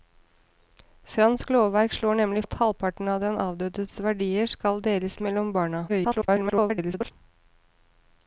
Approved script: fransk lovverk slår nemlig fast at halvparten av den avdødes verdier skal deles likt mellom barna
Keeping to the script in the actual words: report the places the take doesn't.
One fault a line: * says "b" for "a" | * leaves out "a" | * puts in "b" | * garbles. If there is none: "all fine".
* leaves out "fast"
* leaves out "likt"
* garbles